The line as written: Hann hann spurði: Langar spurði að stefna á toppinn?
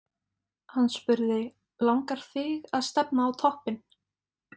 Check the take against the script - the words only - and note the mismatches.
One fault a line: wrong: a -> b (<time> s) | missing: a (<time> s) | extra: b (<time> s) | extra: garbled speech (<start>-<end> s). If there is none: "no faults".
missing: hann (0.9 s)
wrong: spurði -> þig (2.3 s)